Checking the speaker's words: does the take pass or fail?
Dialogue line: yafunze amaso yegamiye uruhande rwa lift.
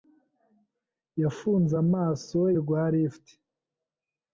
fail